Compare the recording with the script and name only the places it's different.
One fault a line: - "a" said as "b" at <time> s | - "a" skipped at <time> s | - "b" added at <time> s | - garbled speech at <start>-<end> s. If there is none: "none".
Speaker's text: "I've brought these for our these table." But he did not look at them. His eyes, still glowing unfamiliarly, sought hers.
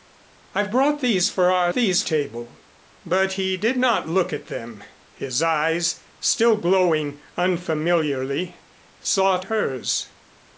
none